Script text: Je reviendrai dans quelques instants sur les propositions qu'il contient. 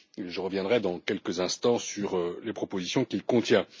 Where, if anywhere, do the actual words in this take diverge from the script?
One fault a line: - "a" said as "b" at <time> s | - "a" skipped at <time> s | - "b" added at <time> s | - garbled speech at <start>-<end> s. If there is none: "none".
none